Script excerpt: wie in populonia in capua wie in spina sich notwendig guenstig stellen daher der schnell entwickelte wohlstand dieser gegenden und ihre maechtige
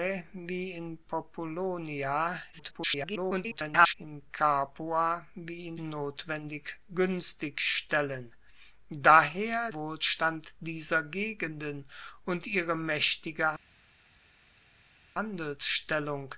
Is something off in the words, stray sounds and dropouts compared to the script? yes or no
yes